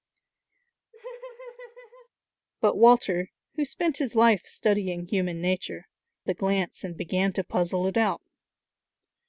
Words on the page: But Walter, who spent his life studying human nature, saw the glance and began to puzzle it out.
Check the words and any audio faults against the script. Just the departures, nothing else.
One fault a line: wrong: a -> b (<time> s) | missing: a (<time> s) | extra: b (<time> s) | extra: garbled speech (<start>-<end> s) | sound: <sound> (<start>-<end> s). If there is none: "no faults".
sound: laugh (0.9-2.1 s)
missing: saw (5.9 s)